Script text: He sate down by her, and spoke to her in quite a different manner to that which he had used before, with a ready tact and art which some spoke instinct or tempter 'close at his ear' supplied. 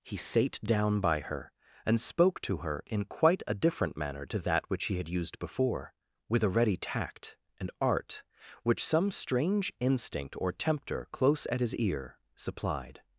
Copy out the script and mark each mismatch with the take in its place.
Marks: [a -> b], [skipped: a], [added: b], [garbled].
He sate down by her, and spoke to her in quite a different manner to that which he had used before, with a ready tact and art which some [spoke -> strange] instinct or tempter 'close at his ear' supplied.